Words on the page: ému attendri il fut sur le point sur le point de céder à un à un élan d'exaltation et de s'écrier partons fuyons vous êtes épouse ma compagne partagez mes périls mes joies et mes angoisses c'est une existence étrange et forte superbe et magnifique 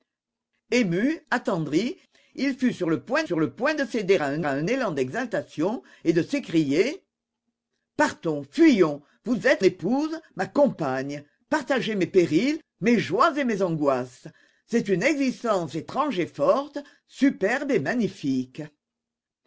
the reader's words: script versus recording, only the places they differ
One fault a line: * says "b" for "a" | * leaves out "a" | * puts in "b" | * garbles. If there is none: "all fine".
all fine